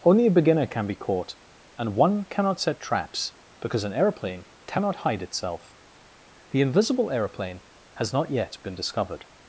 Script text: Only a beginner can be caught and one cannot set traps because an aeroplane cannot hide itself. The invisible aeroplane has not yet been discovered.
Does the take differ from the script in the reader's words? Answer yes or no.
no